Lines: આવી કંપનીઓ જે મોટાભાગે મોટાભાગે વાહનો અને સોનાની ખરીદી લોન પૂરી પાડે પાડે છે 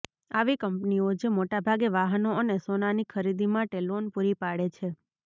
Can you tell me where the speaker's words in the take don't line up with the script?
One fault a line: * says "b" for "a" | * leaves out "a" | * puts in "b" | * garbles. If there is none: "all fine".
* leaves out "મોટાભાગે"
* puts in "માટે"
* leaves out "પાડે"